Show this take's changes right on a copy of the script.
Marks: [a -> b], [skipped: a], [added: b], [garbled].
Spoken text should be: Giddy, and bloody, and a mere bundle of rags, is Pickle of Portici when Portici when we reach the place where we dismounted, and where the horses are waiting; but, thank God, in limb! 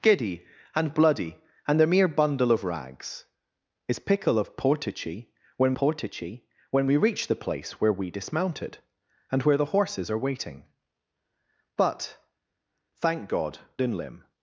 Giddy, and bloody, and a mere bundle of rags, is Pickle of Portici when Portici when we reach the place where we dismounted, and where the horses are waiting; but, thank God, in limb!